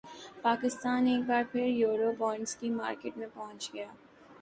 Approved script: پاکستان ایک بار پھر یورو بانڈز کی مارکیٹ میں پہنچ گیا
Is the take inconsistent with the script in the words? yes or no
no